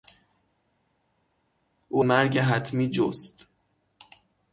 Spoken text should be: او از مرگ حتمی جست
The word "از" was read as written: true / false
false